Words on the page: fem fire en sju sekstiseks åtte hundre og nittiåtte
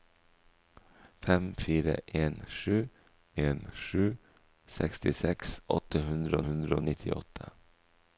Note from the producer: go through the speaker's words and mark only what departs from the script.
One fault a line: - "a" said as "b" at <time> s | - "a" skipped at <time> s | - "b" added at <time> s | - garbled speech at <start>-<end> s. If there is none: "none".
- "en sju" added at 3.4 s
- "hundre" added at 6.5 s